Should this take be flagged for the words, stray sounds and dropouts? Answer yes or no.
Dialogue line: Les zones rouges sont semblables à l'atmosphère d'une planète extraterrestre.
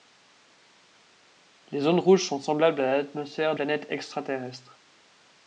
yes